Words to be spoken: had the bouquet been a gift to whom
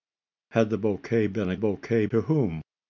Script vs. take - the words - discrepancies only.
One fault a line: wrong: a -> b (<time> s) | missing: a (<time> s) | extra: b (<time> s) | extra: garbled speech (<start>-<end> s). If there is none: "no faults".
wrong: gift -> bouquet (1.6 s)